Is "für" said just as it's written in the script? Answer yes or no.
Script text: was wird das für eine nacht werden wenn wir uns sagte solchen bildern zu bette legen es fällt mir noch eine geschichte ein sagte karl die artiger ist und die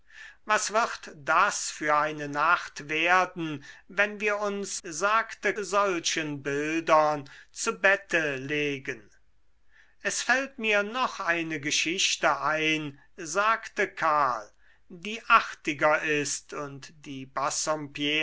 yes